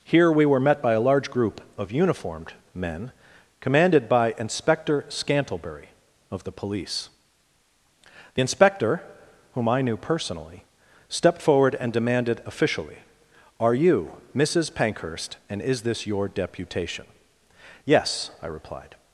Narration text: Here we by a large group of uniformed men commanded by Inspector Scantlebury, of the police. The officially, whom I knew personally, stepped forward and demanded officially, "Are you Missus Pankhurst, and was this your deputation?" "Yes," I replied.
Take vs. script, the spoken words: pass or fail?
fail